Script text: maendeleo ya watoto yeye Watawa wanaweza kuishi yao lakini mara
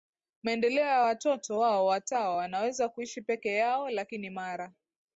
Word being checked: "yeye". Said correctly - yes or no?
no